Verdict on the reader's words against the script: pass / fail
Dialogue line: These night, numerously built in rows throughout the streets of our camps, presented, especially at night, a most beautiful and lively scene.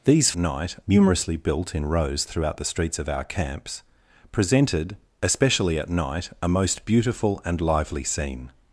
pass